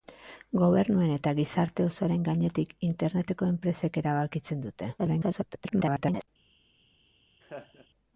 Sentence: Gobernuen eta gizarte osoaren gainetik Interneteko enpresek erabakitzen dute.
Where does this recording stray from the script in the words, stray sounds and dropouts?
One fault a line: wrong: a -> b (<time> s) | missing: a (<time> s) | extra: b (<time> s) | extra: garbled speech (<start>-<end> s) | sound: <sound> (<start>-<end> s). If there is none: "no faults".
extra: garbled speech (5.0-6.3 s)
sound: laugh (7.4-7.9 s)